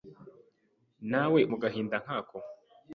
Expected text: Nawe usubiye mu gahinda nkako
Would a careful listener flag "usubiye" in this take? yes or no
yes